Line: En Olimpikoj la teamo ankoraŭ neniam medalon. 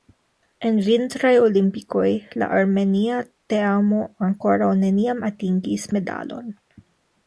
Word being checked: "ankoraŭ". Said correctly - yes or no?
yes